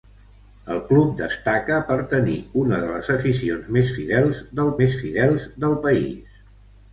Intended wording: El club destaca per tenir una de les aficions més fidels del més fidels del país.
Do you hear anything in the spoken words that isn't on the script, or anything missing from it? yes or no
no